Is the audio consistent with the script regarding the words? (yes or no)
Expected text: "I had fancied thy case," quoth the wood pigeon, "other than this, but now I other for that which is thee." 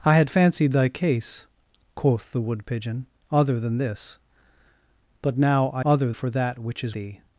yes